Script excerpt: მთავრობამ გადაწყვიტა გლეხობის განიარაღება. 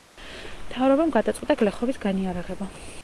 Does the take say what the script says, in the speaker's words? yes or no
yes